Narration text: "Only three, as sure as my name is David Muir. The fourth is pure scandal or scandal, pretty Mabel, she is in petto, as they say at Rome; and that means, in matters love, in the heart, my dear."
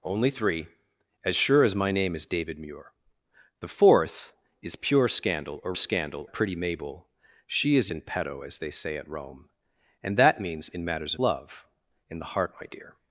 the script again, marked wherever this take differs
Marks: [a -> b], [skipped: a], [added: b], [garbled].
"Only three, as sure as my name is David Muir. The fourth is pure scandal or scandal, pretty Mabel, she is in petto, as they say at Rome; and that means, in matters love, in the heart, my dear."